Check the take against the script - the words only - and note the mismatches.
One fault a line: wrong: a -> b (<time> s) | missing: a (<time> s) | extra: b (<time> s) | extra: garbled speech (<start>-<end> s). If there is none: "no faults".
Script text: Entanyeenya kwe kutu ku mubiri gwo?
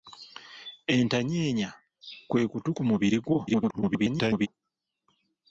extra: garbled speech (3.5-4.5 s)